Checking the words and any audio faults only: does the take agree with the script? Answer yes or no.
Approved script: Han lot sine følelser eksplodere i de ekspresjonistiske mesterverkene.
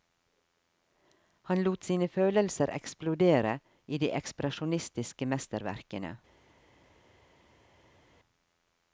yes